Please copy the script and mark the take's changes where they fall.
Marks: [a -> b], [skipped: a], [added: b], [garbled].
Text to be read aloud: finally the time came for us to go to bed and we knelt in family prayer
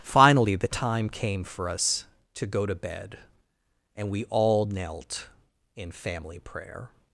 finally the time came for us to go to bed and we [added: all] knelt in family prayer